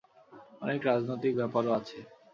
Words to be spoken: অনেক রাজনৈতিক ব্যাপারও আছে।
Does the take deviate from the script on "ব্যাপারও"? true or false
false